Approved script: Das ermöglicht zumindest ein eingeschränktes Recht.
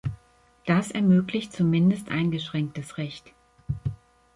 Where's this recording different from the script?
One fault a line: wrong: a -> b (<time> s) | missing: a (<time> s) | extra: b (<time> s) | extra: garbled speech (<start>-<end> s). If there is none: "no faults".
missing: ein (2.1 s)